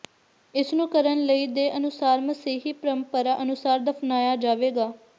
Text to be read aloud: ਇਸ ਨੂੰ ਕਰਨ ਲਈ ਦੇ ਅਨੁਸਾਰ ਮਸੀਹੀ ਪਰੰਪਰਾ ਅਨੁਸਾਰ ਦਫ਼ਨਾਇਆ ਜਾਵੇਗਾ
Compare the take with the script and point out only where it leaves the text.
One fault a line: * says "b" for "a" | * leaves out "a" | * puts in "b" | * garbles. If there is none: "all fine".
all fine